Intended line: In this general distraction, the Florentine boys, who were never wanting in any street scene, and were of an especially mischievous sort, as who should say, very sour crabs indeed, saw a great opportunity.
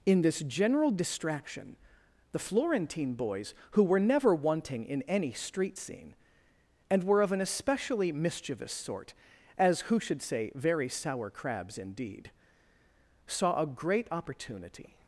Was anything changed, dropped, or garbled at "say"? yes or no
no